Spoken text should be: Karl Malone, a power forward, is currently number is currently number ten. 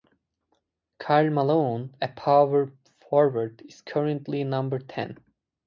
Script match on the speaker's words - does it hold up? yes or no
no